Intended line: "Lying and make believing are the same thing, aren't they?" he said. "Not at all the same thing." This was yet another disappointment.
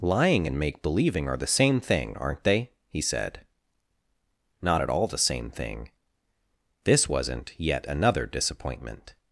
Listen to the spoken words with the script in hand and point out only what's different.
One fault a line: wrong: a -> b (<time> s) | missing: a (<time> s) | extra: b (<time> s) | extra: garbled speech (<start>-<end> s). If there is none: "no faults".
wrong: was -> wasn't (7.1 s)